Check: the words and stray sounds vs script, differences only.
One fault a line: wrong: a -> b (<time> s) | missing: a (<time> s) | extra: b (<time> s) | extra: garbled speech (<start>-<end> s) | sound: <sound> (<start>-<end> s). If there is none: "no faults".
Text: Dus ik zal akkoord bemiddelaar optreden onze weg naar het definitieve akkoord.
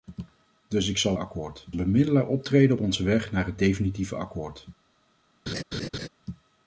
sound: laugh (5.5-6.1 s)